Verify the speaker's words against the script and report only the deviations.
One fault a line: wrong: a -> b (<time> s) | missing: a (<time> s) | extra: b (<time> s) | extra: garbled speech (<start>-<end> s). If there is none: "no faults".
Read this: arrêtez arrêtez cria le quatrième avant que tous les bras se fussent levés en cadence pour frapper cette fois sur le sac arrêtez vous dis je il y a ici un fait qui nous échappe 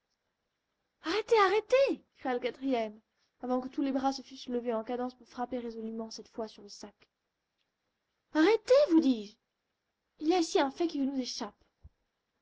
extra: résolument (5.6 s)